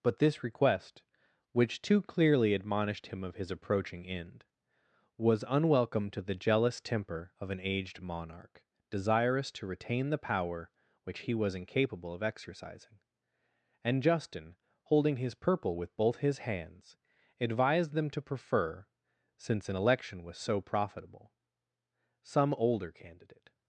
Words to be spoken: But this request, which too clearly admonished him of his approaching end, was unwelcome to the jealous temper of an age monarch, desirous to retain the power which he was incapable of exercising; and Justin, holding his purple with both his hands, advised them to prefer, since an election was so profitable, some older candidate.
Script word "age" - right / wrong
wrong